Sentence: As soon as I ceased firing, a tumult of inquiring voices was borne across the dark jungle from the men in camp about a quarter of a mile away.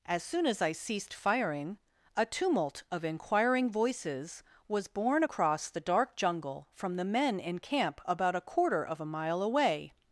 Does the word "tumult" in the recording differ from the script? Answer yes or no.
no